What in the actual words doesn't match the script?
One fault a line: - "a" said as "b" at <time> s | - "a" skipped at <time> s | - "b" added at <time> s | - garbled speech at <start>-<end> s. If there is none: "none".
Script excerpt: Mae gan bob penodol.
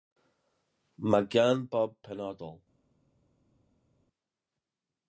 none